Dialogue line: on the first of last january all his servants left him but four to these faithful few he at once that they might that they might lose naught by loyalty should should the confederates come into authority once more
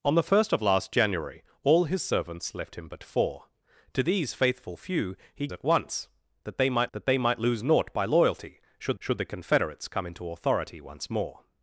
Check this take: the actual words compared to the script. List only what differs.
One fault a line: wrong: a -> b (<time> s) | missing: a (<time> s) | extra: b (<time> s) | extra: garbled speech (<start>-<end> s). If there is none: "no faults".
no faults